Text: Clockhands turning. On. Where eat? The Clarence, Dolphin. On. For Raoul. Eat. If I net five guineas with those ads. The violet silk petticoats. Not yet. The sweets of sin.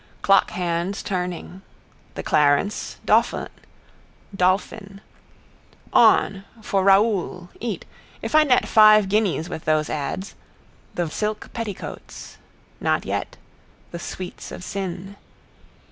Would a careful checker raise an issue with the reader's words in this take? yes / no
yes